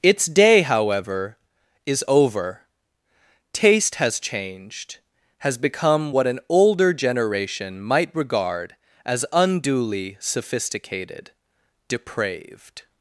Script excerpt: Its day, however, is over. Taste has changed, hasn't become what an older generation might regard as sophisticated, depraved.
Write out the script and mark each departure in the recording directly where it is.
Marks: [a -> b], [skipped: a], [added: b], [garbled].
Its day, however, is over. Taste has changed, [hasn't -> has] become what an older generation might regard as [added: unduly] sophisticated, depraved.